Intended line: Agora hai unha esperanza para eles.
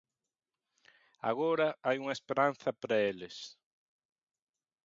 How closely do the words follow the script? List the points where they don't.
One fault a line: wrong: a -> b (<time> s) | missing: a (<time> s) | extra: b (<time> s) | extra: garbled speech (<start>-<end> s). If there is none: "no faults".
no faults